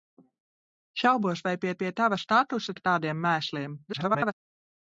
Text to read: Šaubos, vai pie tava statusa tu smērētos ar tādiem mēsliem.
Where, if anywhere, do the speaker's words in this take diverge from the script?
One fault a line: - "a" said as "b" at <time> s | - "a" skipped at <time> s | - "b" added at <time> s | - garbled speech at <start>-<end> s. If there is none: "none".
- "pie" added at 1.8 s
- "tu smērētos" skipped at 2.8 s
- garbled speech at 3.9-4.3 s